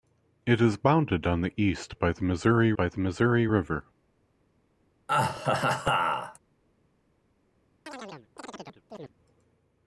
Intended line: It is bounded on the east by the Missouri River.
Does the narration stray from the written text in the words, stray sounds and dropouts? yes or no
yes